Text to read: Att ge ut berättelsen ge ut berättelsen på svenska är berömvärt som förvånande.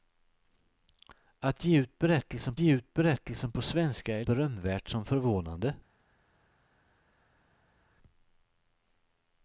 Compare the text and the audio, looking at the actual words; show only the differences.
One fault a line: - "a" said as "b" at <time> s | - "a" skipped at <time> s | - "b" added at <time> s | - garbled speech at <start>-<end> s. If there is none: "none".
none